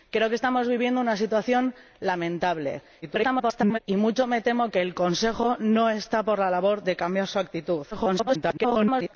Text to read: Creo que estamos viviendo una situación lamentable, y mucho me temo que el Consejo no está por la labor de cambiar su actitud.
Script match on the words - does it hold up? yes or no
no